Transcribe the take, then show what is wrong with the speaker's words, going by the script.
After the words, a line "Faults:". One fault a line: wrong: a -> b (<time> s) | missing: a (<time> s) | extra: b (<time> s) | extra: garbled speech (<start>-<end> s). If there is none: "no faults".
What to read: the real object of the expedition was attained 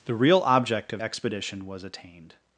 the real object of expedition was attained
Faults:
missing: the (1.0 s)